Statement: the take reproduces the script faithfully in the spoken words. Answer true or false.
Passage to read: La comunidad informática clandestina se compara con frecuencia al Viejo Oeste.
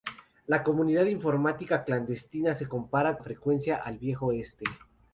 false